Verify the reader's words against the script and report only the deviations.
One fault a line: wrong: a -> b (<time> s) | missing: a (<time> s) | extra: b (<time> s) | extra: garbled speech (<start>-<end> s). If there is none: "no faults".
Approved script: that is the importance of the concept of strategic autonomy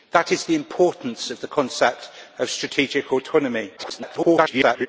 extra: garbled speech (3.8-4.9 s)